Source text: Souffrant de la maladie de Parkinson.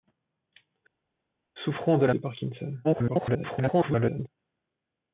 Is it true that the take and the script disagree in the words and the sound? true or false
true